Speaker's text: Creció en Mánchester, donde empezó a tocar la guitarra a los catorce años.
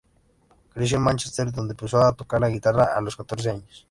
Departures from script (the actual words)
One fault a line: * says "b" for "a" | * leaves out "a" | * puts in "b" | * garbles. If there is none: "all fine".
all fine